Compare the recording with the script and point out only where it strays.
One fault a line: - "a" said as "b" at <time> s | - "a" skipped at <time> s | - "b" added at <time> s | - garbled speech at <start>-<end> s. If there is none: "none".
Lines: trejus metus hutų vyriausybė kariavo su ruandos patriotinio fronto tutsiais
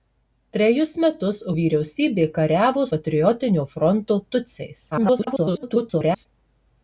- "hutų" skipped at 1.4 s
- "su ruandos" skipped at 2.8 s
- garbled speech at 4.9-6.3 s